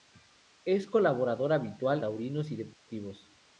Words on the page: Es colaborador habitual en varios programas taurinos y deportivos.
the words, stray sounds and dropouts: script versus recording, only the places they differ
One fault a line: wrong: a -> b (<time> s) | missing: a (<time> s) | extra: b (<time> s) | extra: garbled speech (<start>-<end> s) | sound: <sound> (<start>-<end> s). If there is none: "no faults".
missing: en varios programas (2.0 s)
sound: dropout (2.7-2.9 s)